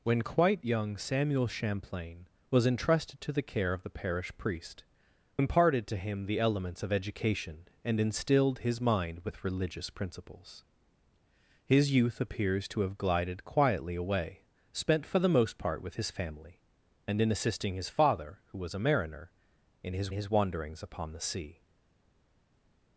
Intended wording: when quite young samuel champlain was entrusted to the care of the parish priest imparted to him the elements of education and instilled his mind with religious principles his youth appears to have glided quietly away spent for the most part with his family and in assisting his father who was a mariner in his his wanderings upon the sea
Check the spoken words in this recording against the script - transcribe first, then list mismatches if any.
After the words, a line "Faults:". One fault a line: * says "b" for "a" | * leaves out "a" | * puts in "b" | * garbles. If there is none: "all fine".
when quite young samuel champlain was entrusted to the care of the parish priest imparted to him the elements of education and instilled his mind with religious principles his youth appears to have glided quietly away spent for the most part with his family and in assisting his father who was a mariner in his his wanderings upon the sea
Faults:
all fine